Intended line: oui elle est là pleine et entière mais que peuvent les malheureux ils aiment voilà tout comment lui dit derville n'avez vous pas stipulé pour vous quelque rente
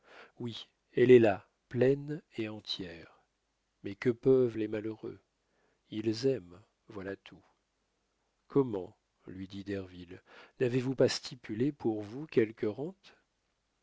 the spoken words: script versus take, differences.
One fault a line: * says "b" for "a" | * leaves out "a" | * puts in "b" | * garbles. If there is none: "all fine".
all fine